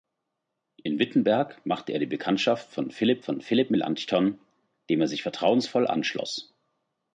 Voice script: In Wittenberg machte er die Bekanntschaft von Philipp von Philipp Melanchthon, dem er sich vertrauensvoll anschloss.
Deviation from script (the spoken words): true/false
false